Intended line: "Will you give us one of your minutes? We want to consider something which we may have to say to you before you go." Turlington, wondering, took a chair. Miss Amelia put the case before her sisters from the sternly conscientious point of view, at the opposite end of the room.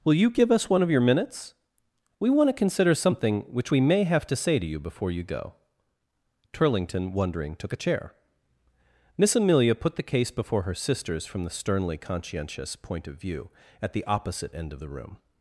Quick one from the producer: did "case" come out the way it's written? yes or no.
yes